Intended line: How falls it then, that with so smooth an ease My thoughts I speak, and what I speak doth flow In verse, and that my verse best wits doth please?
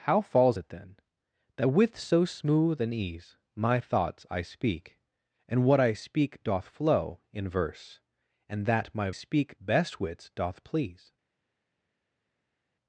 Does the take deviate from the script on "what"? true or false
false